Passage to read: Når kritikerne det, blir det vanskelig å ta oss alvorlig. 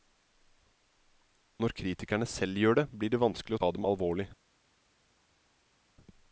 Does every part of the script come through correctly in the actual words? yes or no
no